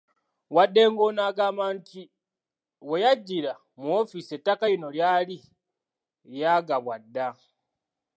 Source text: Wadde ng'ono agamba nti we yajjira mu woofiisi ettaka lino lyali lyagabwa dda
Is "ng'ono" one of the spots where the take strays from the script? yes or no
no